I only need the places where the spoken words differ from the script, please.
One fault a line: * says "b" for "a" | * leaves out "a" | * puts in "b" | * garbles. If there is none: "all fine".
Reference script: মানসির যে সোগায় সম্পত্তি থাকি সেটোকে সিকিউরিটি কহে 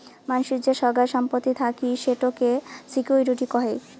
all fine